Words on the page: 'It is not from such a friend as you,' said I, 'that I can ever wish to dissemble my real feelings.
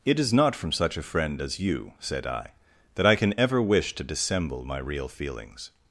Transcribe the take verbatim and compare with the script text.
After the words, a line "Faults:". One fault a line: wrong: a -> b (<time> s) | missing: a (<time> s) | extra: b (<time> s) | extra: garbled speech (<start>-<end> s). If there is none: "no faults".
'It is not from such a friend as you,' said I, 'that I can ever wish to dissemble my real feelings.
Faults:
no faults